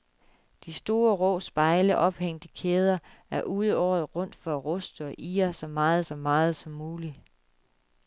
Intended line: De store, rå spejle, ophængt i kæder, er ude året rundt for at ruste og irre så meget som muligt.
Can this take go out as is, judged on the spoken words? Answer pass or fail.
fail